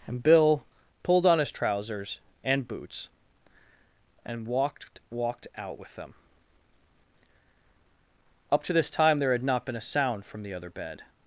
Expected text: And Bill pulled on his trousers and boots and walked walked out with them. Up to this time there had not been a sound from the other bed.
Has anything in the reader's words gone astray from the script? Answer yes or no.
no